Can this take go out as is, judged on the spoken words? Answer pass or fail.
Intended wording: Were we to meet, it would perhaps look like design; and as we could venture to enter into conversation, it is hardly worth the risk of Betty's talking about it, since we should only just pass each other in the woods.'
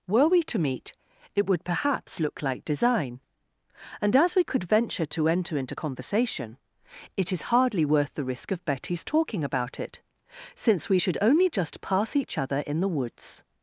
pass